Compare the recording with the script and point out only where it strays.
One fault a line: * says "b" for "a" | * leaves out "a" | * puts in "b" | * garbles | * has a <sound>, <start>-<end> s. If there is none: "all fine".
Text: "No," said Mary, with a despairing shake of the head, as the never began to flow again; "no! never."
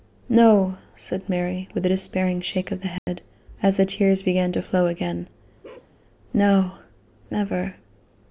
* has a dropout, 3.0-3.1 s
* says "tears" for "never"
* has a bark, 5.6-5.9 s